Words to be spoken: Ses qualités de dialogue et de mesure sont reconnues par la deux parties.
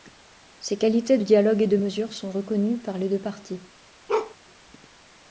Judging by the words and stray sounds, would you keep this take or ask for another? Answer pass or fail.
fail